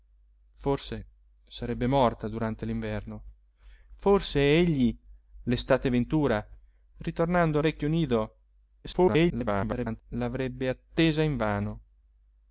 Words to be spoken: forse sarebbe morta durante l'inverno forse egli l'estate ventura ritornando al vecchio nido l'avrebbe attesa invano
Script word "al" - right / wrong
wrong